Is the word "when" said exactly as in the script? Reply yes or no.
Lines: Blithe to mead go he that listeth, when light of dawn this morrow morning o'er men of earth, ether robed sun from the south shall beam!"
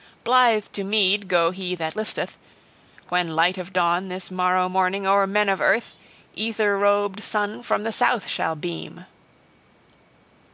yes